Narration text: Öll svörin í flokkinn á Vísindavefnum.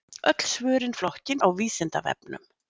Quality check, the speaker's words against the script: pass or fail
pass